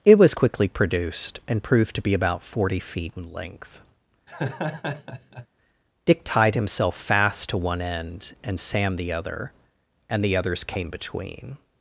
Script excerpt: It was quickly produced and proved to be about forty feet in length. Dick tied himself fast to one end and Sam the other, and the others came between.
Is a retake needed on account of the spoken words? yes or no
no